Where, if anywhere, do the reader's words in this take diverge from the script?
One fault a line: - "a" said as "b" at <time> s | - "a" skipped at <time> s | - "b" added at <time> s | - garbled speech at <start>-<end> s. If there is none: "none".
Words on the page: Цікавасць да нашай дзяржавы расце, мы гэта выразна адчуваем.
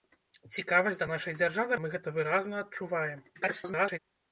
- "расце" skipped at 1.8 s
- garbled speech at 3.3-4.0 s